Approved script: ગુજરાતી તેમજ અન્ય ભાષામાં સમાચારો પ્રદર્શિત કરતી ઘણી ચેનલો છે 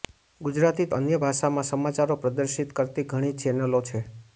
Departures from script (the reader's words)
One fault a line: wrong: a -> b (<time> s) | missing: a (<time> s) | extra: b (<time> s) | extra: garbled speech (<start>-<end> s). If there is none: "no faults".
missing: તેમજ (0.9 s)